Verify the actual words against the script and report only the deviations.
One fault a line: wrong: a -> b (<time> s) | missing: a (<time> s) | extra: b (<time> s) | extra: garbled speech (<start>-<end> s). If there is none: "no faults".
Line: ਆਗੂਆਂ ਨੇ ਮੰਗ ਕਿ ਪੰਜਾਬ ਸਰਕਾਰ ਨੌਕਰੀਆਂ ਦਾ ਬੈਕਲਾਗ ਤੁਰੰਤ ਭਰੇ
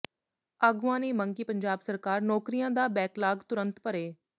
no faults